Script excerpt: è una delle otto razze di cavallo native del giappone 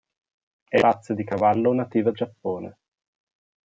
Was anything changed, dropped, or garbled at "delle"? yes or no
yes